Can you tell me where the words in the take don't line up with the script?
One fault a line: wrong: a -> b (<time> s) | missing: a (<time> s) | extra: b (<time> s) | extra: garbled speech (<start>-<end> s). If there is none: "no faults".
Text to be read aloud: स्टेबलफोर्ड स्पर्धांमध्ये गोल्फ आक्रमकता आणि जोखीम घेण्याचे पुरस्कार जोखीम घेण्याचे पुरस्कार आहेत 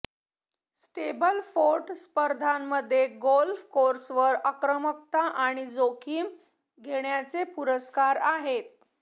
extra: कोर्सवर (3.7 s)
missing: जोखीम घेण्याचे पुरस्कार (8.2 s)